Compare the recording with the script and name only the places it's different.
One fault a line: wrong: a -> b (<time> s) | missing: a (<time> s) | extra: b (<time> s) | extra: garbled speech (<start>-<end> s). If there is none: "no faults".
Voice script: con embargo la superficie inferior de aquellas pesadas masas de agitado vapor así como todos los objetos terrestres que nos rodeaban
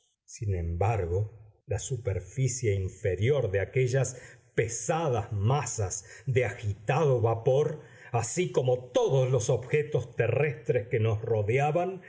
wrong: con -> sin (0.2 s)